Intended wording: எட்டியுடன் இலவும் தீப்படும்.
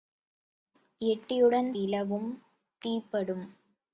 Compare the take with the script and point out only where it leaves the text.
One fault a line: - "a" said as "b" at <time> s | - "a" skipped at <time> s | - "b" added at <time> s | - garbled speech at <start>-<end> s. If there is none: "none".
none